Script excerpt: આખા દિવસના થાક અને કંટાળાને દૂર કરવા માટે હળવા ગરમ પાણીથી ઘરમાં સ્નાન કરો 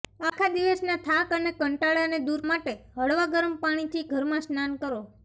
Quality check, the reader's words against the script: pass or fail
fail